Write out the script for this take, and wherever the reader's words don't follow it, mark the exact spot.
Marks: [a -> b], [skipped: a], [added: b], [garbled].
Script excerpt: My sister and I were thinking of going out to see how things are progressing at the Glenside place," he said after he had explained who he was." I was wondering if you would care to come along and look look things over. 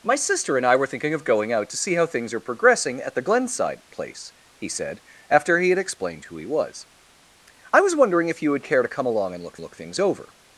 My sister and I were thinking of going out to see how things are progressing at the Glenside place," he said after he had explained who he was." I was wondering if you would care to come along and look look things over.